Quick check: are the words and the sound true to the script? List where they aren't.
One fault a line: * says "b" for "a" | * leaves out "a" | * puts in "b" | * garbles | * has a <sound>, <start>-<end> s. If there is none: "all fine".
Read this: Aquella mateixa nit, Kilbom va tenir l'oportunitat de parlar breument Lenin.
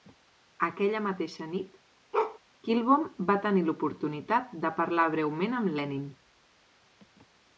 * has a bark, 2.1-2.4 s
* puts in "amb"